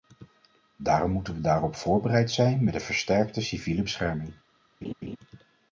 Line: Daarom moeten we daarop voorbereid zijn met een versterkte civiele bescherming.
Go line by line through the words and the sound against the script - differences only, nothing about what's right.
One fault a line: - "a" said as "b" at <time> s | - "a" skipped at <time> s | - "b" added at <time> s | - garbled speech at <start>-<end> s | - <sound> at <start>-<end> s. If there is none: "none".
- laugh at 4.8-5.2 s